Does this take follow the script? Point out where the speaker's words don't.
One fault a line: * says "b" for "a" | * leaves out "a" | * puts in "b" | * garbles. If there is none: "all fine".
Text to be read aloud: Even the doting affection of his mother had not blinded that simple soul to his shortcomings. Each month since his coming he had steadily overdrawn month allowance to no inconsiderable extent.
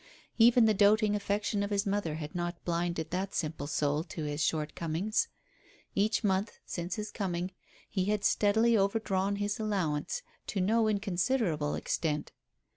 * says "his" for "month"